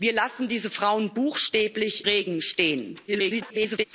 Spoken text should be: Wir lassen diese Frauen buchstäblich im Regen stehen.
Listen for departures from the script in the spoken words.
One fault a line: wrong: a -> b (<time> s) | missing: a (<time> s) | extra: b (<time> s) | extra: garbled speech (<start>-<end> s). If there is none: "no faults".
missing: im (2.1 s)
extra: garbled speech (3.1-3.8 s)